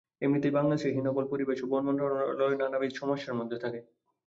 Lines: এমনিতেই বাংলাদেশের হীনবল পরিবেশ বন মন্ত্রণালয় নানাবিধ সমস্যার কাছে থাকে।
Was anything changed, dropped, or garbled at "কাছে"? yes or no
yes